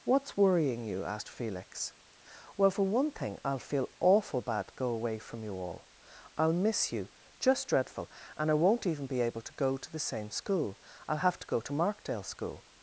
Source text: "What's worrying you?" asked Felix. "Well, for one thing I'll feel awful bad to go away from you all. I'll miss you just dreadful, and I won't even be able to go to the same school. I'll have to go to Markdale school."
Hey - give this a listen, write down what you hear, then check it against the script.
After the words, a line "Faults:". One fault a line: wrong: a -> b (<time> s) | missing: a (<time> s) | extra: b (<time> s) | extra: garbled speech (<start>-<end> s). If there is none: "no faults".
"What's worrying you?" asked Felix. "Well, for one thing I'll feel awful bad to go away from you all. I'll miss you just dreadful, and I won't even be able to go to the same school. I'll have to go to Markdale school."
Faults:
no faults